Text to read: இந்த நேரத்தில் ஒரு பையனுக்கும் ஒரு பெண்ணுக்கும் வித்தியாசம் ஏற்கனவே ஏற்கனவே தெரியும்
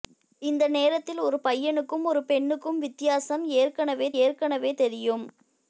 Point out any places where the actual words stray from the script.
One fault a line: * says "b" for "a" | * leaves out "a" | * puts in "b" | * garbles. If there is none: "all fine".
all fine